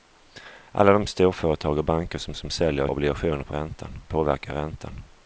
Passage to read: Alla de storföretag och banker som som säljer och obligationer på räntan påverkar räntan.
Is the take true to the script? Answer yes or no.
yes